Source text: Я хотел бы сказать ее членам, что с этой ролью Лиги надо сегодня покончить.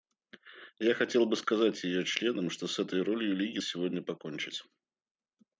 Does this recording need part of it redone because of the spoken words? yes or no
yes